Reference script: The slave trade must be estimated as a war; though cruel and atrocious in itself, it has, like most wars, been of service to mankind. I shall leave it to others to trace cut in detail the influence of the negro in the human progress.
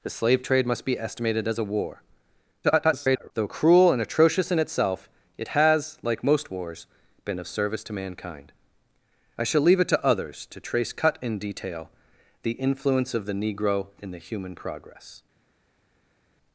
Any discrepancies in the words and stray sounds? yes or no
yes